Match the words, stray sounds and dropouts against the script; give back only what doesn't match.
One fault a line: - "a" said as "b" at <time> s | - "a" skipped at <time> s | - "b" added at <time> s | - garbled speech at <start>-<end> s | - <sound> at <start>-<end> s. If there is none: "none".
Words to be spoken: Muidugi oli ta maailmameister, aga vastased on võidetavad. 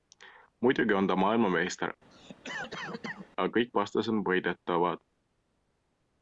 - "oli" said as "on" at 1.0 s
- cough at 2.1-3.3 s
- "kõik" added at 3.6 s